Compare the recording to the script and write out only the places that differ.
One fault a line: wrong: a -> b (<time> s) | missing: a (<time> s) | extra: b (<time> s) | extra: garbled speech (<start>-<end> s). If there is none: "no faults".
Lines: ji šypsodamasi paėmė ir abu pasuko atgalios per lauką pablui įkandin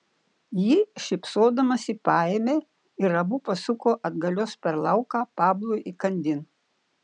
no faults